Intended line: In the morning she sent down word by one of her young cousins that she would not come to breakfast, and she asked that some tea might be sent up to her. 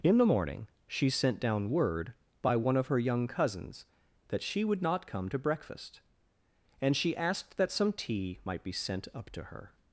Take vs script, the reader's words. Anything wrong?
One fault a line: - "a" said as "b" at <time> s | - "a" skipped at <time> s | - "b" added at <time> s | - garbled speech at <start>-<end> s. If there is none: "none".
none